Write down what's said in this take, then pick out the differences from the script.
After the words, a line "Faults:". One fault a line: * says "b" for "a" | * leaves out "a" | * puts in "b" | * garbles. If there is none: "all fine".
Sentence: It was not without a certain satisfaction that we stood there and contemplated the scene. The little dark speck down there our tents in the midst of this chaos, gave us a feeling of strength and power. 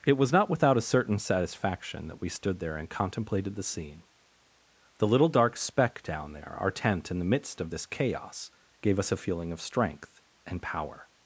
It was not without a certain satisfaction that we stood there and contemplated the scene. The little dark speck down there our tent in the midst of this chaos, gave us a feeling of strength and power.
Faults:
* says "tent" for "tents"